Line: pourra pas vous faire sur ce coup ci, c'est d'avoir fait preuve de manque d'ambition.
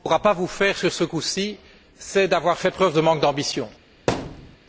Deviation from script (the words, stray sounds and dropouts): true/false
true